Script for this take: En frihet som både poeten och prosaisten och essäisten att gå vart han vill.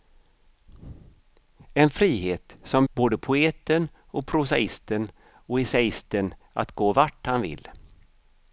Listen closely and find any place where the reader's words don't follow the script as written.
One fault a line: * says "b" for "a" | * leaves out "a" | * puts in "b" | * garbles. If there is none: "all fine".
all fine